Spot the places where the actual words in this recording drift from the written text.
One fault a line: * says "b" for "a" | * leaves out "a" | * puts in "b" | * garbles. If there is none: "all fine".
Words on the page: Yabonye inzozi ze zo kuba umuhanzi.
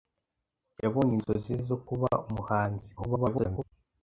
* leaves out "ze"
* garbles